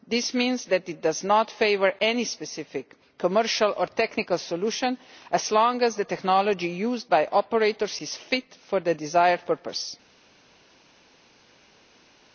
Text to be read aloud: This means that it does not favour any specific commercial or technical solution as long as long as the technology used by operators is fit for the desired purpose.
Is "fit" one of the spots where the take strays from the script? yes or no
no